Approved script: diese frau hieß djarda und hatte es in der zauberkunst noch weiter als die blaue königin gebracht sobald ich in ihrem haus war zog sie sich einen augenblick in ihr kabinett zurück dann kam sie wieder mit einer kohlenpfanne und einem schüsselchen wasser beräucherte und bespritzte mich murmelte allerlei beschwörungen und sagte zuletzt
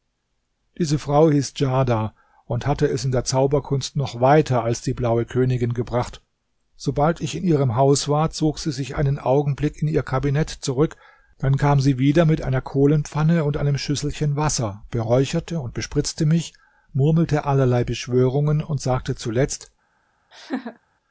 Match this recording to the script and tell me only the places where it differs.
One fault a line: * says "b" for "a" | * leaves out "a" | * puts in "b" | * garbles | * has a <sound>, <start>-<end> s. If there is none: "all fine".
* has a laugh, 20.3-20.8 s